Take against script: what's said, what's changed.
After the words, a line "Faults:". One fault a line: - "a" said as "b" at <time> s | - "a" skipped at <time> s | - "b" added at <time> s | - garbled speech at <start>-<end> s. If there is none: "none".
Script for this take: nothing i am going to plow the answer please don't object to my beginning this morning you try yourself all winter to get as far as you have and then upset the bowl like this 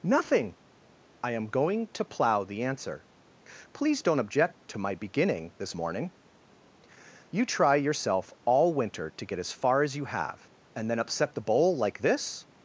nothing i am going to plow the answer please don't object to my beginning this morning you try yourself all winter to get as far as you have and then upset the bowl like this
Faults:
none